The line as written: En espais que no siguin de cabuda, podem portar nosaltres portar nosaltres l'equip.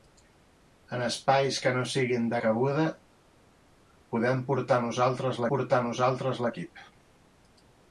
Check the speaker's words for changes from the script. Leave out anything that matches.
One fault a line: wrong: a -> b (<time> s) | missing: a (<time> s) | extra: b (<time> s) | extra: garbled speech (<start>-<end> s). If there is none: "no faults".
no faults